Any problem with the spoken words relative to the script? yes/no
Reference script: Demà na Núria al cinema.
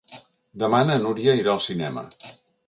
yes